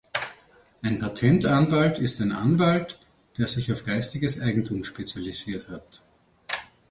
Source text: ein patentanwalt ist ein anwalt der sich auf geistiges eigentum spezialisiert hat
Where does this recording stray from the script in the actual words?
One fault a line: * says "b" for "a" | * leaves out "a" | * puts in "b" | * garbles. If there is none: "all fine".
all fine